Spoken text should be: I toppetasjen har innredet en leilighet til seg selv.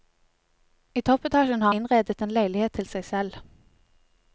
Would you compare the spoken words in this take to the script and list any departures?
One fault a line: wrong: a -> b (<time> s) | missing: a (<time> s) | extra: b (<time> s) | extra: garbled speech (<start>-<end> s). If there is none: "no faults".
no faults